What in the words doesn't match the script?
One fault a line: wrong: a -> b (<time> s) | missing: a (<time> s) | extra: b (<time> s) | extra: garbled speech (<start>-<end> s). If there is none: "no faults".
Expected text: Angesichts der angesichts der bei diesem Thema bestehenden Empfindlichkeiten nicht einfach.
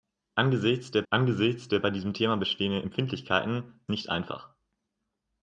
no faults